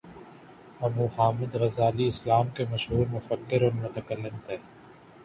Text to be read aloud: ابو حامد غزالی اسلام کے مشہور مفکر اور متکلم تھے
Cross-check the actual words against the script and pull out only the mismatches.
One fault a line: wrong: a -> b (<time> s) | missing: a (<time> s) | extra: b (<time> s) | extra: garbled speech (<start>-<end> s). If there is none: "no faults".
no faults